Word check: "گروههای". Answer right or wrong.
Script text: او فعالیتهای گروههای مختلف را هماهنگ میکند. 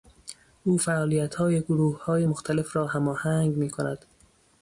right